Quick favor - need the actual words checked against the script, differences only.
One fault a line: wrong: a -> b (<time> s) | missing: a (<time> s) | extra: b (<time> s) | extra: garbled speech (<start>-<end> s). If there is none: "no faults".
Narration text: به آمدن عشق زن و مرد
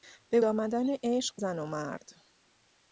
no faults